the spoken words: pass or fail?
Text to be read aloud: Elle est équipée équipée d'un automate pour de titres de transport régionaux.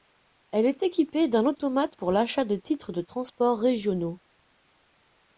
fail